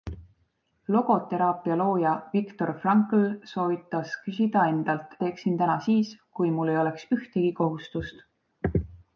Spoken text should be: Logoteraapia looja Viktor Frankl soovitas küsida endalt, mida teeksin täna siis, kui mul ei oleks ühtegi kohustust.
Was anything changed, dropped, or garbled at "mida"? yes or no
yes